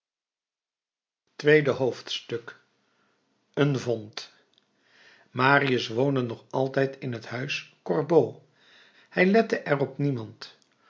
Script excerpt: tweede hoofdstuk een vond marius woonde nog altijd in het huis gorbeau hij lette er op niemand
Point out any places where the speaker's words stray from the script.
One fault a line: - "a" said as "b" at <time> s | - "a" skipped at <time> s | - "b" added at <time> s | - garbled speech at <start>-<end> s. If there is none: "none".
none